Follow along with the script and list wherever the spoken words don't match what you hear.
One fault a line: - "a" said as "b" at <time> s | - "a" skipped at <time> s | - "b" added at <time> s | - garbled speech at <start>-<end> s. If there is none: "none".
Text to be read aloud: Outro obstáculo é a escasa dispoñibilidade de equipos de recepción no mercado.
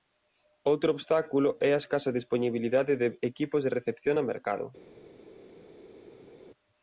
none